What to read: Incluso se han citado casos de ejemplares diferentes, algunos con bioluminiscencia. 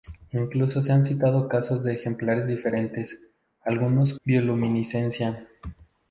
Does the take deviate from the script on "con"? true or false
true